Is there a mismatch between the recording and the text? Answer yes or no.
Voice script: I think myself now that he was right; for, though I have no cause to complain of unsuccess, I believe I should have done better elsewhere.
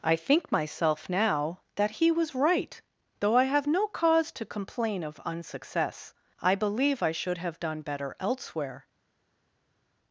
yes